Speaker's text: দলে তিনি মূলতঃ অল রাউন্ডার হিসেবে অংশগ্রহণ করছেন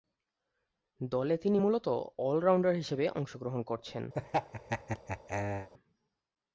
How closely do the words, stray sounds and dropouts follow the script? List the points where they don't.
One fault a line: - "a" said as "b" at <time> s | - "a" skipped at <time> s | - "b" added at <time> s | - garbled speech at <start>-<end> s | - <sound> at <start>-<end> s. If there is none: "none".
- laugh at 4.1-5.7 s